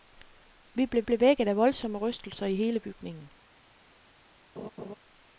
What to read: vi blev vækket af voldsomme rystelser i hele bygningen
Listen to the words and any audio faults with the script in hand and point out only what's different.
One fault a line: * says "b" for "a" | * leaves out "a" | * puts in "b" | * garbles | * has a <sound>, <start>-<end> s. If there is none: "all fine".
* puts in "blev"
* has a laugh, 4.6-4.9 s